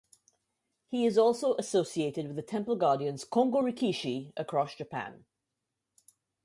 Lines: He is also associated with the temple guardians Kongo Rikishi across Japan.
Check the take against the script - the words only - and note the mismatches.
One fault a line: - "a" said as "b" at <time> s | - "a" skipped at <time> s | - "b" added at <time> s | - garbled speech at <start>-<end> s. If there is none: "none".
none